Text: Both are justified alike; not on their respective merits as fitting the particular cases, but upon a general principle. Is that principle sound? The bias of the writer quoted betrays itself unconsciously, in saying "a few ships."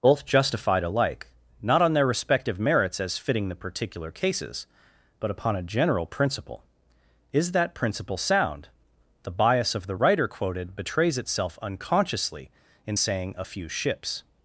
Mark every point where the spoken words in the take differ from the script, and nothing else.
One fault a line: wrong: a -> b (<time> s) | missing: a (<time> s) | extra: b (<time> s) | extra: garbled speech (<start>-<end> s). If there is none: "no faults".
missing: are (0.2 s)